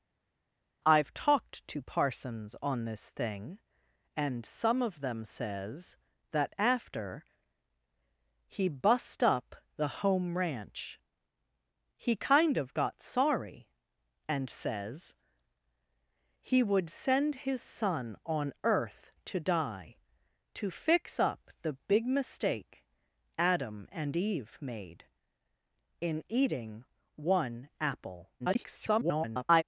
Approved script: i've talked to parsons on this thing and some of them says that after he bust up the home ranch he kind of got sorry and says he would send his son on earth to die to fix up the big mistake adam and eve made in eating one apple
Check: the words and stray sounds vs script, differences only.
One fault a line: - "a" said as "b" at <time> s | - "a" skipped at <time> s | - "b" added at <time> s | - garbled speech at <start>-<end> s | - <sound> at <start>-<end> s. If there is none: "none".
- garbled speech at 28.4-29.6 s